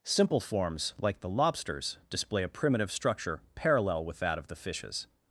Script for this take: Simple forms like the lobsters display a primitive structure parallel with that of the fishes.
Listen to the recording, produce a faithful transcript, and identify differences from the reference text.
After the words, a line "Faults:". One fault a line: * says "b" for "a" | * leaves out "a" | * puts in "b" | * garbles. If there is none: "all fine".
Simple forms like the lobsters display a primitive structure parallel with that of the fishes.
Faults:
all fine